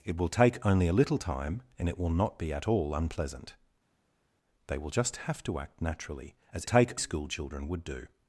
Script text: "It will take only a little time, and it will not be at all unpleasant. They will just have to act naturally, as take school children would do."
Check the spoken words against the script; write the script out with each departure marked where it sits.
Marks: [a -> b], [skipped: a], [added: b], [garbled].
"It will take only a little time, and it will not be at all unpleasant. They will just have to act naturally, as take school children would do."